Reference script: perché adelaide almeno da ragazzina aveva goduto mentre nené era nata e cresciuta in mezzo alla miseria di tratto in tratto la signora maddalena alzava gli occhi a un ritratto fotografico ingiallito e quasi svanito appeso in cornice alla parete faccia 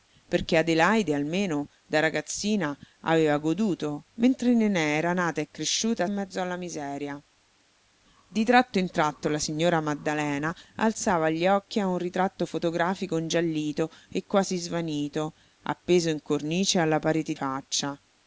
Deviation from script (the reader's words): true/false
false